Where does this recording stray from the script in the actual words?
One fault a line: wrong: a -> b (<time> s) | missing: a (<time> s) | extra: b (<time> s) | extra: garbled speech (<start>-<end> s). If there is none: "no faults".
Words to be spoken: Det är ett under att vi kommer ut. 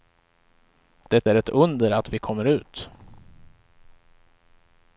no faults